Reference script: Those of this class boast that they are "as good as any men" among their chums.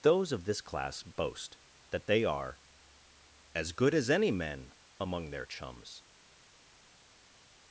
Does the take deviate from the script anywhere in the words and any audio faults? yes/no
no